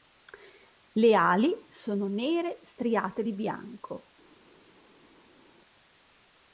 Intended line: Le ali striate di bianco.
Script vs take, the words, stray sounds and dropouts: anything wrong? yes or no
yes